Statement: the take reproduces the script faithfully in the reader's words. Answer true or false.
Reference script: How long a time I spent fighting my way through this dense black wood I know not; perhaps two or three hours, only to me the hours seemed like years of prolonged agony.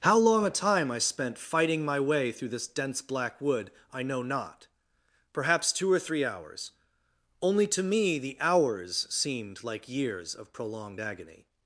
true